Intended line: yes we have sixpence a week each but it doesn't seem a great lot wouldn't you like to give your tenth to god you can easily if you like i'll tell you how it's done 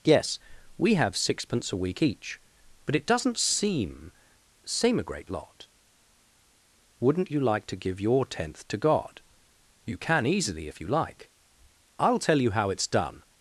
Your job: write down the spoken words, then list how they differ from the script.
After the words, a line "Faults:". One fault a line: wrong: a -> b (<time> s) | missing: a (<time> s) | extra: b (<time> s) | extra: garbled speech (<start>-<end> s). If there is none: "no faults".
yes we have sixpence a week each but it doesn't seem seem a great lot wouldn't you like to give your tenth to god you can easily if you like i'll tell you how it's done
Faults:
extra: seem (4.6 s)